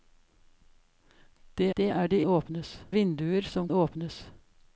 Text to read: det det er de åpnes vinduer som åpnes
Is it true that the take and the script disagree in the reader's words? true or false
false